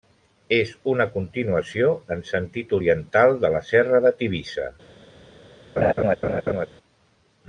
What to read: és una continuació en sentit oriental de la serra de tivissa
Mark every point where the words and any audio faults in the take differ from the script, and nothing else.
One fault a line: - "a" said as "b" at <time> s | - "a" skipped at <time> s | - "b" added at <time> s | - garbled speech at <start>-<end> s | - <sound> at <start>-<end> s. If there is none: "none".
- laugh at 5.8-6.7 s